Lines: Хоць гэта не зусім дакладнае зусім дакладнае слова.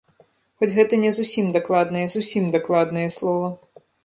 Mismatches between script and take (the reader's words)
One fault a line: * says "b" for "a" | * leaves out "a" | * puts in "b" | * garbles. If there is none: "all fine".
all fine